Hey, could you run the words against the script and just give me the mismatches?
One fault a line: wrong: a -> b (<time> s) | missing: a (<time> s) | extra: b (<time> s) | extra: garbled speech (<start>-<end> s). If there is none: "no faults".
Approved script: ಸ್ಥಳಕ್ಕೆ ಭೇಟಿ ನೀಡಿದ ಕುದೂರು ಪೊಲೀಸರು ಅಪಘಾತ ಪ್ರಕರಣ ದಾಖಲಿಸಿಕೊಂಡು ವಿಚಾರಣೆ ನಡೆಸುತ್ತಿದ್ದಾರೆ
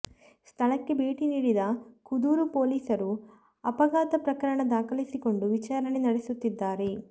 no faults